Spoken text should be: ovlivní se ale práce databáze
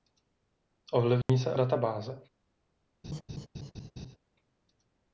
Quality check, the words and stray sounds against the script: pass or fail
fail